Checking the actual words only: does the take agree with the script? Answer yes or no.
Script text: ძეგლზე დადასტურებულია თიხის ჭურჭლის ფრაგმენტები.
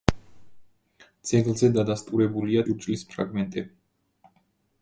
no